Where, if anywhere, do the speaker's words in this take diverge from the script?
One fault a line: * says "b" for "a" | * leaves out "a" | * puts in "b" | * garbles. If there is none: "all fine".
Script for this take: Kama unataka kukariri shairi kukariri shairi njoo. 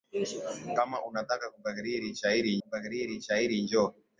all fine